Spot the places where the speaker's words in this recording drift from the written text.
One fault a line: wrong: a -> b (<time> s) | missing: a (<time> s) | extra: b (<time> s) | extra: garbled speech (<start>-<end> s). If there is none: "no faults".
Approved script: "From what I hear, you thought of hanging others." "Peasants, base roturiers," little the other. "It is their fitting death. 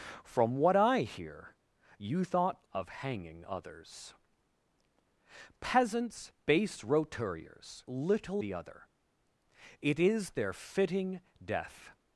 no faults